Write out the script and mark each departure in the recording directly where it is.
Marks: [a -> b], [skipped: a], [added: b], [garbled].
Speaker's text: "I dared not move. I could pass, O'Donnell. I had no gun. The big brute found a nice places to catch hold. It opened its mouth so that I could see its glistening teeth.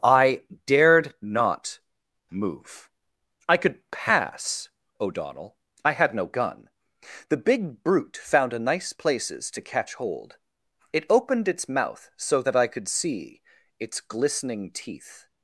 "I dared not move. I could pass, O'Donnell. I had no gun. The big brute found a nice places to catch hold. It opened its mouth so that I could see its glistening teeth.